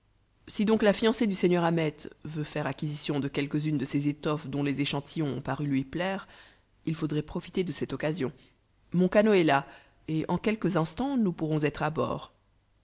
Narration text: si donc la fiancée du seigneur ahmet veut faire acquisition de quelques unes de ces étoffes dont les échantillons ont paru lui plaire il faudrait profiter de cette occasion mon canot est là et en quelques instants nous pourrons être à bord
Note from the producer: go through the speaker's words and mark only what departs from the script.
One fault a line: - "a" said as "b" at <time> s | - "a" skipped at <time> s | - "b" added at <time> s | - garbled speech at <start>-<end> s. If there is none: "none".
none